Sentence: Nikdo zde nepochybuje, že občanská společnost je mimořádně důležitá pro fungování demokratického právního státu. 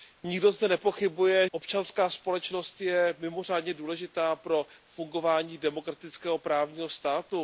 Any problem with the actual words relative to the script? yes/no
yes